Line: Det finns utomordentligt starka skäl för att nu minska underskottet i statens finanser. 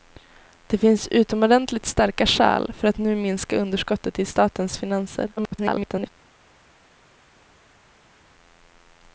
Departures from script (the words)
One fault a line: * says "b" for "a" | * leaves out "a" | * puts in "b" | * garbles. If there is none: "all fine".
* garbles